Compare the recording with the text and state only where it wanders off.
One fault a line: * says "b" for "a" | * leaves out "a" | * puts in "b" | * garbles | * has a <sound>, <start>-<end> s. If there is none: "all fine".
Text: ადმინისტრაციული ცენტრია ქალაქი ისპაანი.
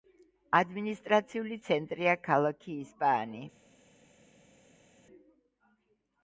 all fine